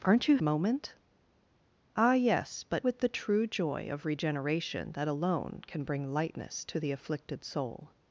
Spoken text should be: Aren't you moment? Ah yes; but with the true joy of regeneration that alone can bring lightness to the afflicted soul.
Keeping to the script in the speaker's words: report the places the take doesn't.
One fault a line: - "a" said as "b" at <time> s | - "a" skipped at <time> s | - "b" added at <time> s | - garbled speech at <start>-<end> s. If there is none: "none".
none